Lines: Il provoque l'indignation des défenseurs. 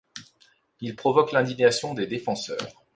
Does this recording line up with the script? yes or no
yes